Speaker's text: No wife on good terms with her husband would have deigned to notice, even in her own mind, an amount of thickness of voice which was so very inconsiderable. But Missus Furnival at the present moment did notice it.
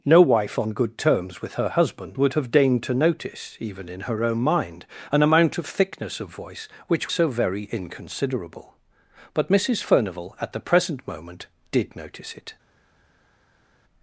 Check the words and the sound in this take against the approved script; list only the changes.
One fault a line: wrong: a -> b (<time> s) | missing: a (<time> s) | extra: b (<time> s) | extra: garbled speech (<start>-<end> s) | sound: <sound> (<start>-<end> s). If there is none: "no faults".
missing: was (7.1 s)